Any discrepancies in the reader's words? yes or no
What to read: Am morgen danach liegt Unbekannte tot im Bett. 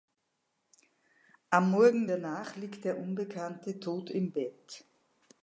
yes